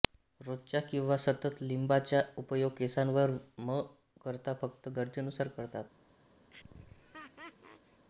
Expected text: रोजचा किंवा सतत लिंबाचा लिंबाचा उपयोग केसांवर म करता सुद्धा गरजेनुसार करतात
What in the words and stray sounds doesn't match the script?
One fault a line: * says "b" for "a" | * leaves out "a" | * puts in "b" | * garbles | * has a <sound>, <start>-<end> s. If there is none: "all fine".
* leaves out "लिंबाचा"
* says "फक्त" for "सुद्धा"
* has a laugh, 6.5-8.1 s